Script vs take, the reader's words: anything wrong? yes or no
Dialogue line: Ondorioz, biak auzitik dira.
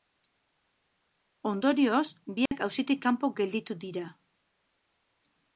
yes